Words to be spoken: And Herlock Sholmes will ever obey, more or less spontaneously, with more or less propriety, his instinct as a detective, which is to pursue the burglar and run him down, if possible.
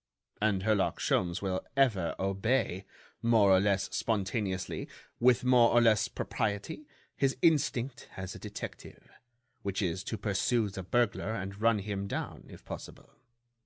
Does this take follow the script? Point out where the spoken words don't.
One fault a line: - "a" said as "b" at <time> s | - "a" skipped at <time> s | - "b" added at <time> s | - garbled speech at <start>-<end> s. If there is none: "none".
none